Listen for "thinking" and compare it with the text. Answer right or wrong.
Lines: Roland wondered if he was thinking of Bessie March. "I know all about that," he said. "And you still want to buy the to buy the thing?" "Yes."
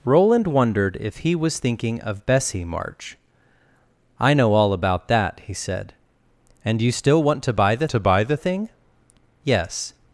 right